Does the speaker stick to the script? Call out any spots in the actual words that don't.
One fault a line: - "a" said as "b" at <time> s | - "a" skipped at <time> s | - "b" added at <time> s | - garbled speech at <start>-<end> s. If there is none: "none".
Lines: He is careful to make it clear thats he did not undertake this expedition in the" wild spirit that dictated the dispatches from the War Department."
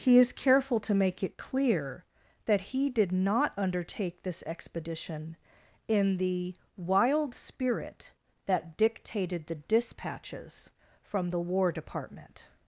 - "thats" said as "that" at 2.5 s